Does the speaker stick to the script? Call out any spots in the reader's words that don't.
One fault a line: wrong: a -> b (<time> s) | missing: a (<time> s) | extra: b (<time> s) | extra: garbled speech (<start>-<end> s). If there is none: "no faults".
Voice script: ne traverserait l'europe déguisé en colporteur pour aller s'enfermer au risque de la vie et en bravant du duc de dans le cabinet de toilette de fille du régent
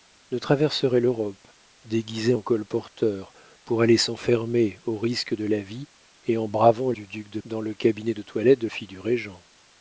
no faults